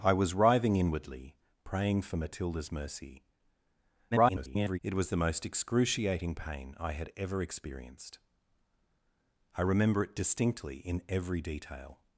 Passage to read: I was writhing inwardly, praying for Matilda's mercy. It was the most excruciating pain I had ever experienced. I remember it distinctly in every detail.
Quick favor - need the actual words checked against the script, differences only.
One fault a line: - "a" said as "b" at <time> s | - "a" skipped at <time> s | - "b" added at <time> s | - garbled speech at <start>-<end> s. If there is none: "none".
- garbled speech at 4.1-4.8 s